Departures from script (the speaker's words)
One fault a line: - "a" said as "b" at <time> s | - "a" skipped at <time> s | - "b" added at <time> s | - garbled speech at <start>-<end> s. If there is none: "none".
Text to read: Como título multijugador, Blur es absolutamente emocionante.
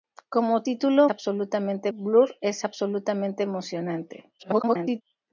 - "multijugador" said as "absolutamente" at 1.1 s
- garbled speech at 4.4-5.0 s